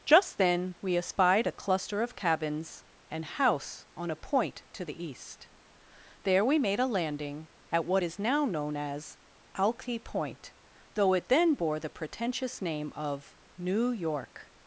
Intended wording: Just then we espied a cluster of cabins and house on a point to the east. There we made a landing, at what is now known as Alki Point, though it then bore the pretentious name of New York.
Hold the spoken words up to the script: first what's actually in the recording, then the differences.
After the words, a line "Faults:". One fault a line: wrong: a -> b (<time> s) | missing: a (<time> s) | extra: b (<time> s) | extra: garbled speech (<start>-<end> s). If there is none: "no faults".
Just then we espied a cluster of cabins and house on a point to the east. There we made a landing, at what is now known as Alki Point, though it then bore the pretentious name of New York.
Faults:
no faults